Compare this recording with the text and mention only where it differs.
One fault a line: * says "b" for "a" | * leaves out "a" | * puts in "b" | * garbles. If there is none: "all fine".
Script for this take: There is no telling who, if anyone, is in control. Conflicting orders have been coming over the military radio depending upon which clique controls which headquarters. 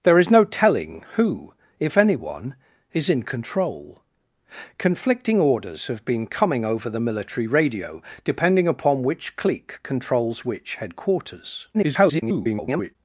* garbles